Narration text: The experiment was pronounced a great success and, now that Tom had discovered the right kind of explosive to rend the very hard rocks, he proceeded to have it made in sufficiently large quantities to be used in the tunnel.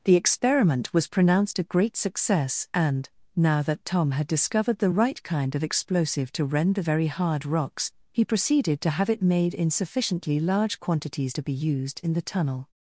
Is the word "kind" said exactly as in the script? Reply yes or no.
yes